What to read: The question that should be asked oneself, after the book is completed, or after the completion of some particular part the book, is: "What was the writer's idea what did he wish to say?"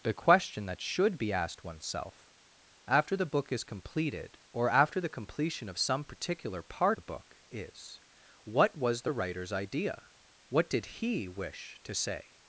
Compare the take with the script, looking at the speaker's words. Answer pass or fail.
pass